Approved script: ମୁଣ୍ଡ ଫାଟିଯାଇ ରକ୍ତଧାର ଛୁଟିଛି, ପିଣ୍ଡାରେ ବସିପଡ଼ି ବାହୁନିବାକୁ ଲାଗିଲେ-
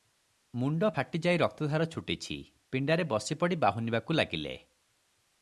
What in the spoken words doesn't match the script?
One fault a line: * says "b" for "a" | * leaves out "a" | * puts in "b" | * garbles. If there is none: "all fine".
all fine